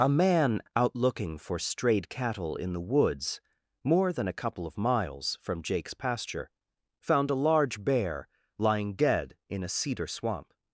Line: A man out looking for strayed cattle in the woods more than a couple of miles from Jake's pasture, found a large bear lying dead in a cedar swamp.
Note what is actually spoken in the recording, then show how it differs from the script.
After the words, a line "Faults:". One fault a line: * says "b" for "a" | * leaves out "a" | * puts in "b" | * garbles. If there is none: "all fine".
A man out looking for strayed cattle in the woods more than a couple of miles from Jake's pasture, found a large bear lying dead in a cedar swamp.
Faults:
all fine